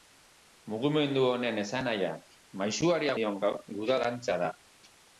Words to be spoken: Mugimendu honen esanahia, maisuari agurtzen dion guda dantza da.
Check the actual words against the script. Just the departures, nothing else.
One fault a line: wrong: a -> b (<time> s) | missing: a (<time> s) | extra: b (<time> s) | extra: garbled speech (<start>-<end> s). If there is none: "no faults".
missing: agurtzen (3.1 s)